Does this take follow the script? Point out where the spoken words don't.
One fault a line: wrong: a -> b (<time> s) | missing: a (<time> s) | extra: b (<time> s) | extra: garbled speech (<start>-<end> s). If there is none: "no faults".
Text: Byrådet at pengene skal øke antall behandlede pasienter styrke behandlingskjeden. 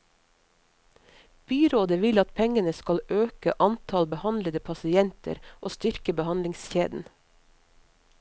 extra: vil (2.0 s)
extra: og (5.6 s)